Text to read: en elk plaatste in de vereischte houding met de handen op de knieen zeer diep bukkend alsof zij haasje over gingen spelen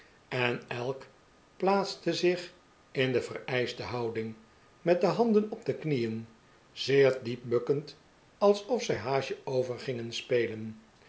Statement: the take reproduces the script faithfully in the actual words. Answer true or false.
false